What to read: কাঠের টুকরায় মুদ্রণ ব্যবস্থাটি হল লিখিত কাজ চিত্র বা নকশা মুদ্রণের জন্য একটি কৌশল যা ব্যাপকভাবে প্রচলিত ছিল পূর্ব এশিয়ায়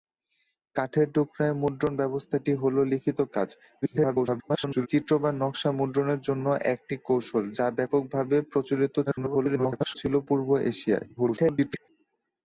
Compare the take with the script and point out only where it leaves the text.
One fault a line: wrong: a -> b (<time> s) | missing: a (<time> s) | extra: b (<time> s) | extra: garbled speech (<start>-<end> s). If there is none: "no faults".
extra: garbled speech (3.8-4.9 s)
extra: garbled speech (9.1-10.0 s)
extra: garbled speech (11.2-11.9 s)